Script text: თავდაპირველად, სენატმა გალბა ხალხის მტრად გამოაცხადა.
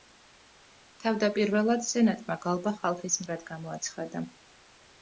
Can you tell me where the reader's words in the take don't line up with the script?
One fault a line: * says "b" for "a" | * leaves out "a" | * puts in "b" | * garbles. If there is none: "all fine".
all fine